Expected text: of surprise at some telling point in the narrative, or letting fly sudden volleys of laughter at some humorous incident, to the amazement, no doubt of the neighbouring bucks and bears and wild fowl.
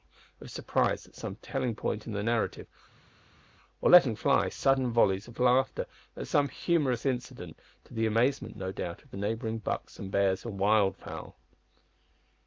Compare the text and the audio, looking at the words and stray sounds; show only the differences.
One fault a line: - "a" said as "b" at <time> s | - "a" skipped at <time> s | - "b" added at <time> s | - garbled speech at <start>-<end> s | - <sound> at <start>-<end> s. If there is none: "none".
none